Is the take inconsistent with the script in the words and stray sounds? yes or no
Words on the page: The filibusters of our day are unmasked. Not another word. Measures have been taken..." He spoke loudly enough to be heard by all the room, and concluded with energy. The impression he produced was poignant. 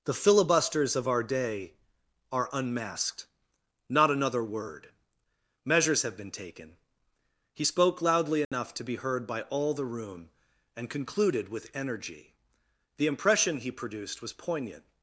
yes